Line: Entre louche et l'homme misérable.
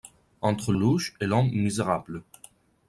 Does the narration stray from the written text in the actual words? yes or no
no